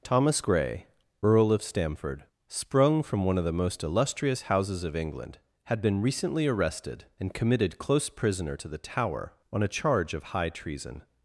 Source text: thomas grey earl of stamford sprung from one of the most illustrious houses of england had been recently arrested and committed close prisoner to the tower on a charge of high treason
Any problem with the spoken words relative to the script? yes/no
no